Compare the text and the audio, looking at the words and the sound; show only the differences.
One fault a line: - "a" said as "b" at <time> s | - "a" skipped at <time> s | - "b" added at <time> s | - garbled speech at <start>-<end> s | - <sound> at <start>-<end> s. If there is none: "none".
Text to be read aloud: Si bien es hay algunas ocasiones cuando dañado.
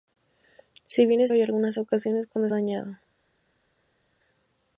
none